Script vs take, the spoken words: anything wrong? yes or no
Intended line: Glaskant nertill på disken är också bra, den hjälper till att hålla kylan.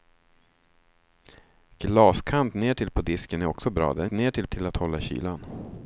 yes